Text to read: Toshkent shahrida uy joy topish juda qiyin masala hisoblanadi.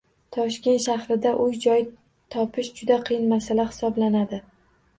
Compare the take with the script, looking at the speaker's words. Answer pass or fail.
pass